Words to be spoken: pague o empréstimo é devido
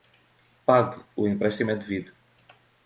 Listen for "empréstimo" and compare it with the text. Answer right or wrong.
right